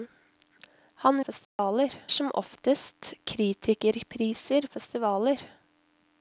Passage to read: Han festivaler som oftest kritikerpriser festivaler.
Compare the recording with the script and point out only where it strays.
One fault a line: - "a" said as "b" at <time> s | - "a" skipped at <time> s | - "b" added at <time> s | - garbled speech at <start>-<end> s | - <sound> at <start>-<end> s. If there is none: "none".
- dropout at 1.4-1.6 s